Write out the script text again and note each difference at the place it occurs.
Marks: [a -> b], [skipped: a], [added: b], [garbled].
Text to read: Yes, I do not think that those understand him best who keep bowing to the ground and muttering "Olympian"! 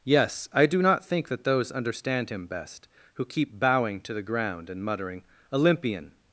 Yes, I do not think that those understand him best who keep bowing to the ground and muttering "Olympian"!